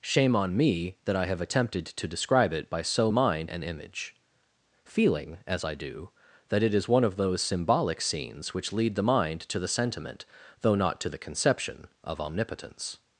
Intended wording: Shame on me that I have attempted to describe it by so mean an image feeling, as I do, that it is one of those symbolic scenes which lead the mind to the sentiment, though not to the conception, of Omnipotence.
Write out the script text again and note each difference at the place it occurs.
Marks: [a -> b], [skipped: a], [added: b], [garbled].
Shame on me that I have attempted to describe it by so [mean -> mind] an image feeling, as I do, that it is one of those symbolic scenes which lead the mind to the sentiment, though not to the conception, of Omnipotence.